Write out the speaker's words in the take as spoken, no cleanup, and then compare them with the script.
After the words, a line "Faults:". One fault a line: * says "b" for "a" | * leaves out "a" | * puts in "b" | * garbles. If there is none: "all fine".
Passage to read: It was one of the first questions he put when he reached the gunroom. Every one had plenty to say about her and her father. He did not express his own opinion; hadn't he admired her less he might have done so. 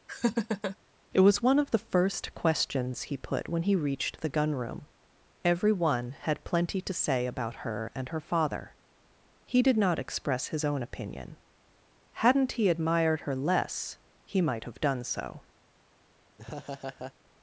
It was one of the first questions he put when he reached the gunroom. Every one had plenty to say about her and her father. He did not express his own opinion; hadn't he admired her less he might have done so.
Faults:
all fine